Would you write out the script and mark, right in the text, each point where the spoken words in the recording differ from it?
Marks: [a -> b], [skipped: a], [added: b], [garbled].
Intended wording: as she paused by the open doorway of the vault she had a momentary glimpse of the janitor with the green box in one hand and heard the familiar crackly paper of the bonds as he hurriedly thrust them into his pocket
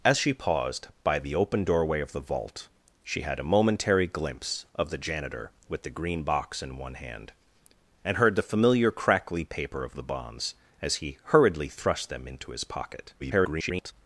as she paused by the open doorway of the vault she had a momentary glimpse of the janitor with the green box in one hand and heard the familiar crackly paper of the bonds as he hurriedly thrust them into his pocket [garbled]